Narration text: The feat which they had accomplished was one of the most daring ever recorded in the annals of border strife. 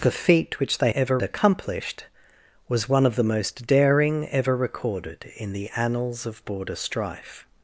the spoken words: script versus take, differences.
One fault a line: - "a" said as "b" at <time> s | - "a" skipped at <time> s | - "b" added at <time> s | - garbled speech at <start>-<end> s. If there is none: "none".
- "had" said as "ever" at 0.9 s